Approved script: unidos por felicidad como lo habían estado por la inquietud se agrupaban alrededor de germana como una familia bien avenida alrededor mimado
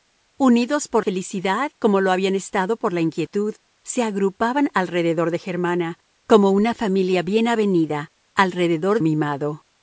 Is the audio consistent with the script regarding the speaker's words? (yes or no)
yes